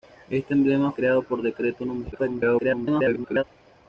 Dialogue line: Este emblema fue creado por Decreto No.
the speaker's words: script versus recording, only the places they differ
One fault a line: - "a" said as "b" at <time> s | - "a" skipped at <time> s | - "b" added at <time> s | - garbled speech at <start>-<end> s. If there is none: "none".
- "fue" skipped at 0.9 s
- garbled speech at 2.1-3.4 s